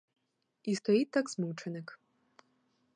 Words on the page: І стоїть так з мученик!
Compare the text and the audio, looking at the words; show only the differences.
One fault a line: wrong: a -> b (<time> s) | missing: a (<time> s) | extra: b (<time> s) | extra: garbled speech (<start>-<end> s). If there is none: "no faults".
no faults